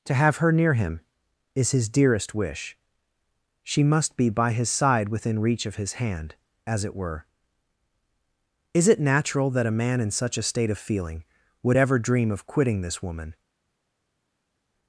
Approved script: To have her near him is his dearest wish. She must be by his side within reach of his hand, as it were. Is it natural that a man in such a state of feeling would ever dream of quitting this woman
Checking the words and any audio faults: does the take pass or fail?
pass